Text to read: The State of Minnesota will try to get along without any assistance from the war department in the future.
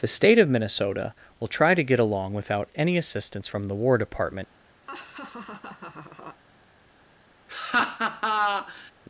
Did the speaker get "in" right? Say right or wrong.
wrong